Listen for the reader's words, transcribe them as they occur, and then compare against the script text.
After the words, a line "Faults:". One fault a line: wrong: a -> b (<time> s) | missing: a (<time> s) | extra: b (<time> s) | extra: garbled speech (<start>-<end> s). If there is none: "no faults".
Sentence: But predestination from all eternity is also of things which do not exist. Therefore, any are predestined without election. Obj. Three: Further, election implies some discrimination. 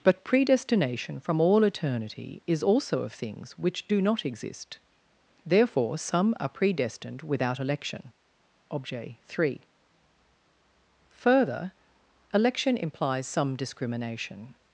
But predestination from all eternity is also of things which do not exist. Therefore, some are predestined without election. Obj. Three: Further, election implies some discrimination.
Faults:
wrong: any -> some (6.0 s)